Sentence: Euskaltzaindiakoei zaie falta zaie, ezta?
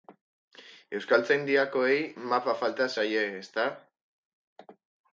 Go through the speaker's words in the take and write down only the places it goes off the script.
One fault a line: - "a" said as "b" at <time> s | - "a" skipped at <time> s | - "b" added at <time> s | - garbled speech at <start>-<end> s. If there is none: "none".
- "zaie" said as "mapa" at 2.3 s